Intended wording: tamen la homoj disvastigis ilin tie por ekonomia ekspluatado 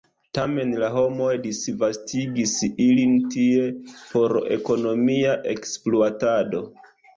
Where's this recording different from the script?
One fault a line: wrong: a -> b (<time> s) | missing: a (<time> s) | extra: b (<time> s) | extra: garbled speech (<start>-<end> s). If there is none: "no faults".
no faults